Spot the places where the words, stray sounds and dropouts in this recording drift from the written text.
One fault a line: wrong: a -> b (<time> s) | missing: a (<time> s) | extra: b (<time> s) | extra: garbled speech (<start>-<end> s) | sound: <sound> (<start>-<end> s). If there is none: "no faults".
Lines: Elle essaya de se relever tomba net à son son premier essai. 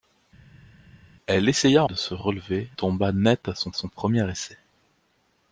no faults